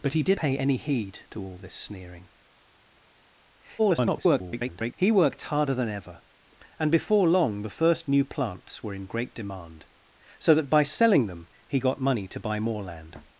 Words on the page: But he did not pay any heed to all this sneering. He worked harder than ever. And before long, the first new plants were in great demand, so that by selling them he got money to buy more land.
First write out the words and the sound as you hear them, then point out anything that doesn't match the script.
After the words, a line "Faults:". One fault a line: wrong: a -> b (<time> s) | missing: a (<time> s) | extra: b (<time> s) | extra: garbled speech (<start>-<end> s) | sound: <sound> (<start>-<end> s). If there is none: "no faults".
But he did pay any heed to all this sneering. [garbled] He worked harder than ever. And before long, the first new plants were in great demand, so that by selling them he got money to buy more land.
Faults:
missing: not (0.4 s)
extra: garbled speech (3.8-4.9 s)